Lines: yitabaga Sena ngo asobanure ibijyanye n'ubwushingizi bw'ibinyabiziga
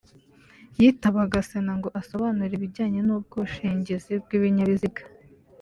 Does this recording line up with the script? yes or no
yes